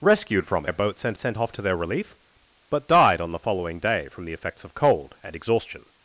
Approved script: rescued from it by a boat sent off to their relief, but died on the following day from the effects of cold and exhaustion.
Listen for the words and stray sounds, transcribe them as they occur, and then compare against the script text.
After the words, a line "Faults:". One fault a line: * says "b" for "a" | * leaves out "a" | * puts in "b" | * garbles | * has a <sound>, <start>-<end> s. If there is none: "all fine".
rescued from a boat sent sent off to their relief, but died on the following day from the effects of cold and exhaustion.
Faults:
* leaves out "it by"
* puts in "sent"